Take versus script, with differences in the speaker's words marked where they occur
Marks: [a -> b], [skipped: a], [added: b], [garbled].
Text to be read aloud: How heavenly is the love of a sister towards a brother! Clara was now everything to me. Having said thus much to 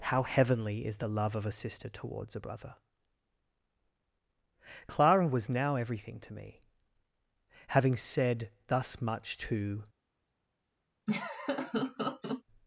How heavenly is the love of a sister towards a brother! Clara was now everything to me. Having said thus much to